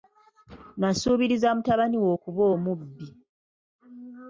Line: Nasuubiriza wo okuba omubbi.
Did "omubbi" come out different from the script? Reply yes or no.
no